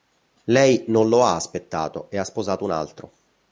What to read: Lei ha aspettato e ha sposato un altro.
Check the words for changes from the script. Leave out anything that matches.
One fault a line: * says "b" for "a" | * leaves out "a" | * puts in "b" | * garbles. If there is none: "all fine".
* puts in "non lo"